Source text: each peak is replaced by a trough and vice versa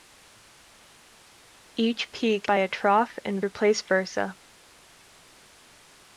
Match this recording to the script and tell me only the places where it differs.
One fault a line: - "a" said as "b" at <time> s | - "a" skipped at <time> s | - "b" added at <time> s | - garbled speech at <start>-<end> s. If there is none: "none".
- "is replaced" skipped at 2.5 s
- "vice" said as "replaced" at 3.4 s